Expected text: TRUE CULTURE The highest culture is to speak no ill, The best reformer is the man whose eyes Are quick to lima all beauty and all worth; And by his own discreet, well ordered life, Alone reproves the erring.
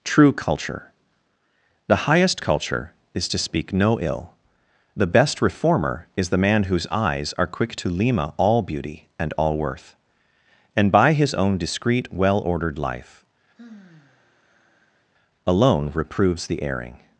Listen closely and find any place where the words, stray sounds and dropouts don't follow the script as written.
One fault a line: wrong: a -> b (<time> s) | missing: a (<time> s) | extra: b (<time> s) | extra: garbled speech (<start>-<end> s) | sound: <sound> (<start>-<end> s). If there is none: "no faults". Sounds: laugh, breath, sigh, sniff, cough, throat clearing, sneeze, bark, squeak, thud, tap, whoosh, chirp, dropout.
sound: sigh (13.6-15.0 s)